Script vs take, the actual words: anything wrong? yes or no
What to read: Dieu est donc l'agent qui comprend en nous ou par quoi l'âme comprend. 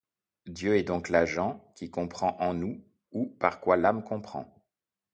no